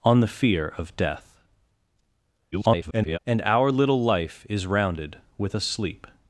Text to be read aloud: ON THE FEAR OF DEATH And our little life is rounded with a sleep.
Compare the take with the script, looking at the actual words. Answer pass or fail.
fail